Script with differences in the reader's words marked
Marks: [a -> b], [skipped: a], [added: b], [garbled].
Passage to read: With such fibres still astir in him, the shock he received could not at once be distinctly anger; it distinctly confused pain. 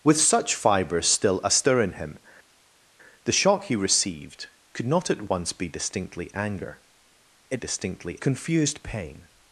With such fibres still astir in him, the shock he received could not at once be distinctly anger; it distinctly confused pain.